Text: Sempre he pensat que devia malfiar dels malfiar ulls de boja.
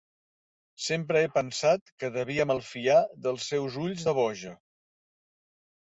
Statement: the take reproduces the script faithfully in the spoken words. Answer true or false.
false